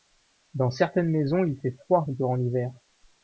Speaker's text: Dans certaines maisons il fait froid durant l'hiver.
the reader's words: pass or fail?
pass